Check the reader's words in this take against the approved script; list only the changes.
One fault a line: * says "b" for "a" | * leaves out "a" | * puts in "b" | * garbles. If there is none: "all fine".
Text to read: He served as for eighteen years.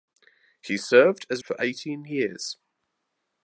all fine